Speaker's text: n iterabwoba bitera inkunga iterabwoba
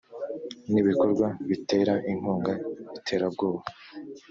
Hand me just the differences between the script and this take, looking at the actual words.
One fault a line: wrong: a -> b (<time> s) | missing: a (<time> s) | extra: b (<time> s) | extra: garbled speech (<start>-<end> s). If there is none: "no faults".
wrong: iterabwoba -> ibikorwa (0.8 s)